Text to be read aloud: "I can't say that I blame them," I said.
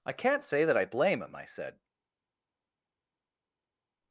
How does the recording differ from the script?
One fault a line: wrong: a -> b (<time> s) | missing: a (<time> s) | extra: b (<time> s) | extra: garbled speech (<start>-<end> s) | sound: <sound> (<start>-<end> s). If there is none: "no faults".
wrong: them -> him (1.2 s)